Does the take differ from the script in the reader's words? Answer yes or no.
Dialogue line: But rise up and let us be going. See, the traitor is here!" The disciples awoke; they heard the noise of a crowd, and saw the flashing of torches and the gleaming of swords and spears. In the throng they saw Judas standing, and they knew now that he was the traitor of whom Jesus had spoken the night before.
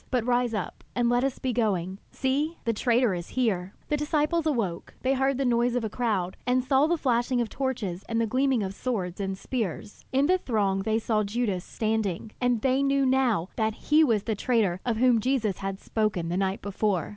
no